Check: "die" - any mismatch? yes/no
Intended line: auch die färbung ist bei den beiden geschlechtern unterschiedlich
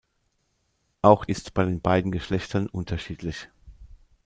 yes